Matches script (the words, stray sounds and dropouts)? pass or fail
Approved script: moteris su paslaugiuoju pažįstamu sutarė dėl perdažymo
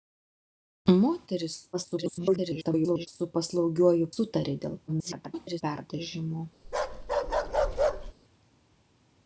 fail